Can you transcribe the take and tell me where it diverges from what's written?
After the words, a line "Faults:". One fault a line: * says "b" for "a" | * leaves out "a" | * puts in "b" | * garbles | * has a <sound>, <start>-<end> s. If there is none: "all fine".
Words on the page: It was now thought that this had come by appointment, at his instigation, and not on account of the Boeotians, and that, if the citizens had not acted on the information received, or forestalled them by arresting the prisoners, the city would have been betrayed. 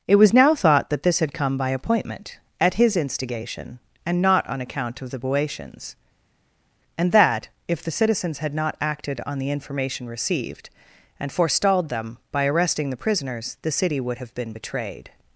It was now thought that this had come by appointment, at his instigation, and not on account of the Boeotians, and that, if the citizens had not acted on the information received, and forestalled them by arresting the prisoners, the city would have been betrayed.
Faults:
* says "and" for "or"